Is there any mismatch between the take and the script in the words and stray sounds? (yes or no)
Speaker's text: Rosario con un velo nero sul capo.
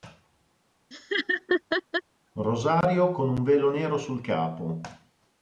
yes